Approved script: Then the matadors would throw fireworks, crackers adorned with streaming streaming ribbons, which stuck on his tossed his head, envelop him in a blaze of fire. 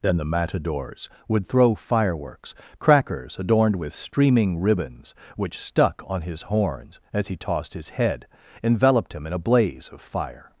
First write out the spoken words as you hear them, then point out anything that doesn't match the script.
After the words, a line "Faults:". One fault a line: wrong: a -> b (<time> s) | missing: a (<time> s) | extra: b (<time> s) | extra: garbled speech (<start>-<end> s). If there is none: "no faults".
Then the matadors would throw fireworks, crackers adorned with streaming ribbons, which stuck on his horns, as he tossed his head, enveloped him in a blaze of fire.
Faults:
missing: streaming (4.6 s)
extra: horns as he (6.4 s)
wrong: envelop -> enveloped (8.6 s)